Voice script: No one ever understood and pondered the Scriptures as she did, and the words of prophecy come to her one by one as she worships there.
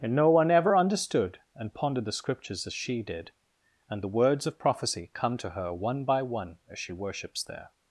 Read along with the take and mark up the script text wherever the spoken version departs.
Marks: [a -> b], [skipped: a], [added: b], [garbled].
[added: and] No one ever understood and pondered the Scriptures as she did, and the words of prophecy come to her one by one as she worships there.